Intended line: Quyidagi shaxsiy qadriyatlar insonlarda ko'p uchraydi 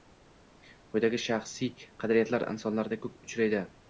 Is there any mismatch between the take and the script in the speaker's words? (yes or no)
no